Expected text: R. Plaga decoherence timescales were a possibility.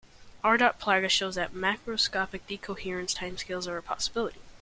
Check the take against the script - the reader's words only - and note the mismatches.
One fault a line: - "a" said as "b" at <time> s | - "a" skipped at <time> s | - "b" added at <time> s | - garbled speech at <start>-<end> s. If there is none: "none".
- "shows that macroscopic" added at 1.1 s
- "were" said as "are" at 3.7 s